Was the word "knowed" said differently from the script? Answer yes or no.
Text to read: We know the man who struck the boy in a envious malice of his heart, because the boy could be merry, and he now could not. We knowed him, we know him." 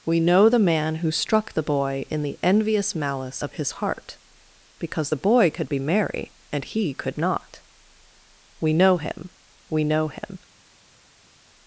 yes